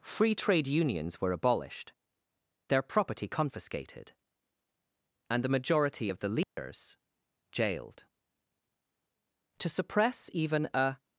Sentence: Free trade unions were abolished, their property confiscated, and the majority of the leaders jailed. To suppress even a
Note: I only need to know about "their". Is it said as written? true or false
true